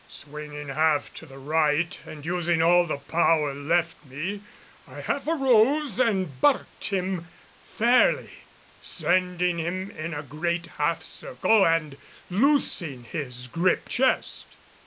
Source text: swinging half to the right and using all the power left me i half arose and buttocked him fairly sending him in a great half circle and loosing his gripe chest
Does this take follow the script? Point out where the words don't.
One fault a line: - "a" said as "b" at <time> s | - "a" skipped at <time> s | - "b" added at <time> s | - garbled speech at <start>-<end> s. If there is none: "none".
none